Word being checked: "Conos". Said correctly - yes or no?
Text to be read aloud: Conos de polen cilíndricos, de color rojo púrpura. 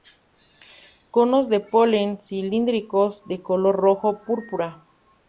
yes